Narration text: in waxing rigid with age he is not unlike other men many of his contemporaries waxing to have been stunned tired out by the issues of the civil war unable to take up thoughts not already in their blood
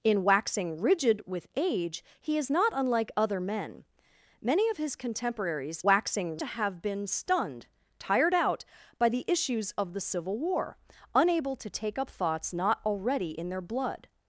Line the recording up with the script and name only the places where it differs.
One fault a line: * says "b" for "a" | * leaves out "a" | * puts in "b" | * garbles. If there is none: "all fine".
all fine